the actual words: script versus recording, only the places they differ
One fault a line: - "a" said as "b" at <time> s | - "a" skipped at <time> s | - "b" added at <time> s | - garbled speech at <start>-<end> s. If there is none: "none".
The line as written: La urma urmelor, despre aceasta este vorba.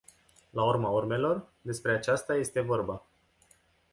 none